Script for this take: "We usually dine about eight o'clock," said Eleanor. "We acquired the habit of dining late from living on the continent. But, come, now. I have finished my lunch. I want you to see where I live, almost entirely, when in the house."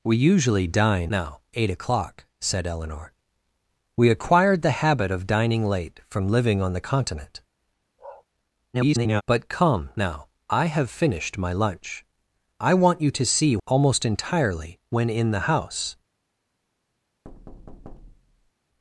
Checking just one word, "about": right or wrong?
wrong